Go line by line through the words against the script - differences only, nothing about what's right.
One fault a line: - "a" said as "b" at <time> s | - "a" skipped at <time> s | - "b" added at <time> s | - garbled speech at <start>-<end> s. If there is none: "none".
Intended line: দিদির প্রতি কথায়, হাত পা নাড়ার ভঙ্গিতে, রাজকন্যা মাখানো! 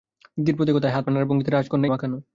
none